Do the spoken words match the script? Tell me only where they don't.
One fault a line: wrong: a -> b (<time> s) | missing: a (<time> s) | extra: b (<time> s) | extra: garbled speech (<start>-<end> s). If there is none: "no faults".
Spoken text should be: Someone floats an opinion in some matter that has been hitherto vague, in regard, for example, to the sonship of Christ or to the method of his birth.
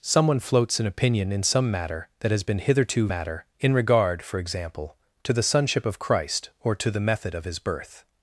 wrong: vague -> matter (3.1 s)